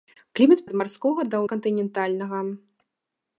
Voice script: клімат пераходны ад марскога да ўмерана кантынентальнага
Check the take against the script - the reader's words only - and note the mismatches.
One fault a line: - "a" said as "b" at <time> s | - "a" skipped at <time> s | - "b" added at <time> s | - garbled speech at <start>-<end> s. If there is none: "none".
- "пераходны" skipped at 0.6 s
- "ўмерана" skipped at 1.4 s